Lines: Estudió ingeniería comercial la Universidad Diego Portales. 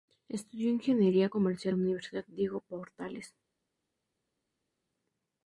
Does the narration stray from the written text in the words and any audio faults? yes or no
no